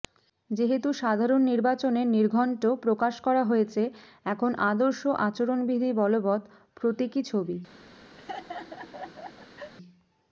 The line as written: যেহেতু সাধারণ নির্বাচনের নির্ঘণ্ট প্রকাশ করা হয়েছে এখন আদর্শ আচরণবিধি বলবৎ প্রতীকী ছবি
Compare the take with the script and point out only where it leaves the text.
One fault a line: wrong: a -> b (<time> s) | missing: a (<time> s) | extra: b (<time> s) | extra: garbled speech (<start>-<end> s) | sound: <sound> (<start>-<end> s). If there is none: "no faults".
sound: laugh (8.2-9.7 s)